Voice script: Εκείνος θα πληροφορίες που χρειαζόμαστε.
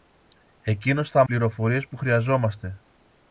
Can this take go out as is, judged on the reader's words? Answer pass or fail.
pass